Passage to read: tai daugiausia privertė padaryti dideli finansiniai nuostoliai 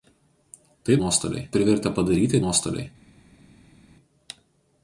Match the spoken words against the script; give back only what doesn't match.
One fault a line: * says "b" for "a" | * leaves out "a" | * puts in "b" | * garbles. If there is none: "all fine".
* says "nuostoliai" for "daugiausia"
* leaves out "dideli finansiniai"